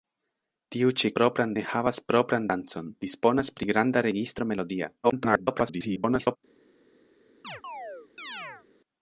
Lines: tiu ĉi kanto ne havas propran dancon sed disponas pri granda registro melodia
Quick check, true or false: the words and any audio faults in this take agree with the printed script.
false